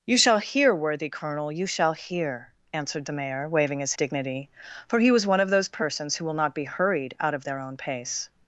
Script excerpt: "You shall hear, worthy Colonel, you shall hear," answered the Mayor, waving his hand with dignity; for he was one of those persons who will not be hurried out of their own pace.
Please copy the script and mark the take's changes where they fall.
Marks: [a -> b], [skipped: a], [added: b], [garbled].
"You shall hear, worthy Colonel, you shall hear," answered the Mayor, waving his [skipped: hand with] dignity; for he was one of those persons who will not be hurried out of their own pace.